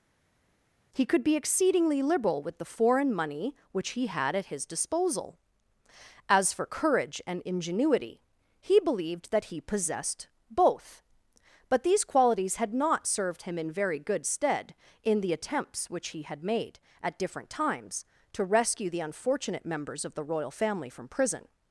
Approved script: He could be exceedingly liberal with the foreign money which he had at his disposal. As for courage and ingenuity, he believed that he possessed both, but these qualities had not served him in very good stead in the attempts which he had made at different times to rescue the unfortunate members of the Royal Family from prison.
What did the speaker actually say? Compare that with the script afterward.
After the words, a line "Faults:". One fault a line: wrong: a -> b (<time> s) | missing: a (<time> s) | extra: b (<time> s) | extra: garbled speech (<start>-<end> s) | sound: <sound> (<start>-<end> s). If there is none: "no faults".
He could be exceedingly liberal with the foreign money which he had at his disposal. As for courage and ingenuity, he believed that he possessed both, but these qualities had not served him in very good stead in the attempts which he had made at different times to rescue the unfortunate members of the Royal Family from prison.
Faults:
no faults